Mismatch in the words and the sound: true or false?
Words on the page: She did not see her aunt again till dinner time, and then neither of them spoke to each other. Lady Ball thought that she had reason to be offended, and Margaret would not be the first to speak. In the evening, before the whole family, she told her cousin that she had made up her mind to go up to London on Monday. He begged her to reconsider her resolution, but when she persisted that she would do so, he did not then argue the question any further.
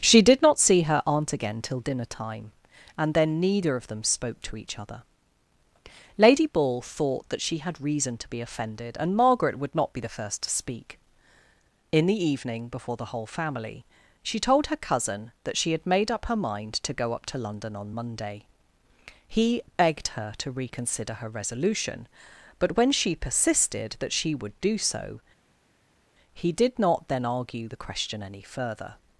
false